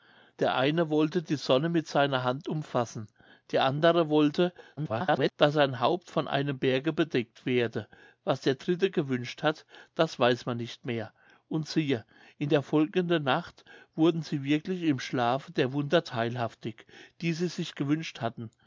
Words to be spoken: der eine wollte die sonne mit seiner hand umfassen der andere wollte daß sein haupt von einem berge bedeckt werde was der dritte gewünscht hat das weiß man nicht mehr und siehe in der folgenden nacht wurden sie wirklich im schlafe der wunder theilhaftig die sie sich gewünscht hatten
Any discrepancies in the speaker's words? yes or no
yes